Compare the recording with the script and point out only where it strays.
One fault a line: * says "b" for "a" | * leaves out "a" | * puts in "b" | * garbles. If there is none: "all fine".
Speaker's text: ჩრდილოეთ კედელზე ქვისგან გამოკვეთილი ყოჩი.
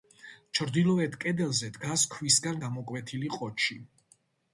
* puts in "დგას"